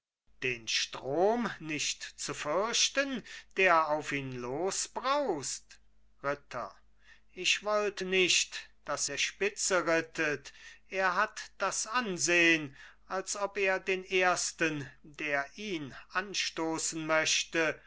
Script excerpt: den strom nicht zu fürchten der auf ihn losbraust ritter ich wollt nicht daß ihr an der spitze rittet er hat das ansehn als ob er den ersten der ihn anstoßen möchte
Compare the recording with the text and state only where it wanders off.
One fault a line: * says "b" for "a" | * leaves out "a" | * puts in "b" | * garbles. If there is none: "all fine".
* leaves out "ihr an"